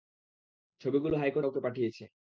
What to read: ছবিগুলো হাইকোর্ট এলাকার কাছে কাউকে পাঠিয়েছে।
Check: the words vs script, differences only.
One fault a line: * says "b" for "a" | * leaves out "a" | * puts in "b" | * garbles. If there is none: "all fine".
* leaves out "এলাকার কাছে"